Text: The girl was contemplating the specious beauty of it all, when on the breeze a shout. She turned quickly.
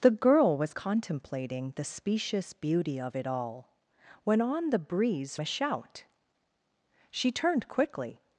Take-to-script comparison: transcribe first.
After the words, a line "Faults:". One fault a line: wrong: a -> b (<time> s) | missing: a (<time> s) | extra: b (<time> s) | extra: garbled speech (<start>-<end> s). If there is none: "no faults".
The girl was contemplating the specious beauty of it all, when on the breeze a shout. She turned quickly.
Faults:
no faults